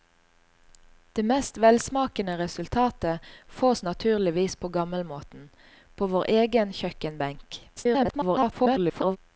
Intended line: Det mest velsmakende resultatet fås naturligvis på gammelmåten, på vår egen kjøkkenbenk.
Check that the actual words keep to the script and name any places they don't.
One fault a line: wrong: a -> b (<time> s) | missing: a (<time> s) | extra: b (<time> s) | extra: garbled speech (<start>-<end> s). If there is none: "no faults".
extra: garbled speech (7.8-9.2 s)